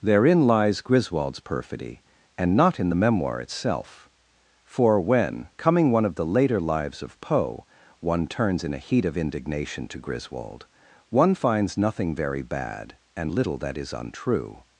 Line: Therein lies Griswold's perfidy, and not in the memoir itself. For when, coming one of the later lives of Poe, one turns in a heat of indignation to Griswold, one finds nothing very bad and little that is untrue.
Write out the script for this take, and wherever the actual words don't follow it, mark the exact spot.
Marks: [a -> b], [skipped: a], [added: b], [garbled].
Therein lies Griswold's perfidy, and not in the memoir itself. For when, coming one of the later lives of Poe, one turns in a heat of indignation to Griswold, one finds nothing very bad and little that is untrue.